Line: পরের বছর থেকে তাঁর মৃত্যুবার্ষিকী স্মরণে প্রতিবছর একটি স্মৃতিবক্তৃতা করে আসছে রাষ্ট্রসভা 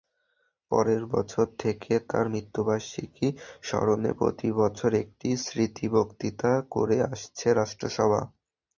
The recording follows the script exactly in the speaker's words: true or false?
true